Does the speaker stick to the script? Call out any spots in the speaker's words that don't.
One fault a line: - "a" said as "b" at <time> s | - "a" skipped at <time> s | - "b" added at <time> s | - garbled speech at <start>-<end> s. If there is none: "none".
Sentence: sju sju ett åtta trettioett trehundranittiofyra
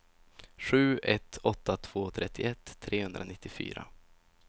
- "sju" skipped at 1.0 s
- "två" added at 1.8 s